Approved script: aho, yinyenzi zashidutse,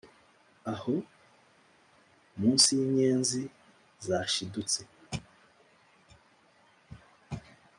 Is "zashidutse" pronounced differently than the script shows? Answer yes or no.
no